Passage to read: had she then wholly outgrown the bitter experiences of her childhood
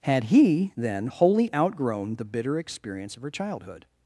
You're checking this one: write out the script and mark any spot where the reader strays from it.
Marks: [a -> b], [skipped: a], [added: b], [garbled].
had [she -> he] then wholly outgrown the bitter [experiences -> experience] of her childhood